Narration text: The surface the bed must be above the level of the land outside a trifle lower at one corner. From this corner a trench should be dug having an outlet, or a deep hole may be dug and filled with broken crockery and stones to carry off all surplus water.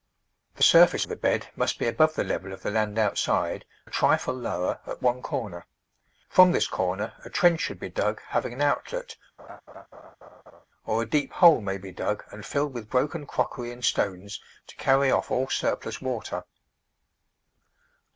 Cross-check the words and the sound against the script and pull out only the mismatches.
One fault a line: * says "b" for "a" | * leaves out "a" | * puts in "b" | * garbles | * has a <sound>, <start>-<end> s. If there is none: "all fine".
* has a laugh, 9.4-10.7 s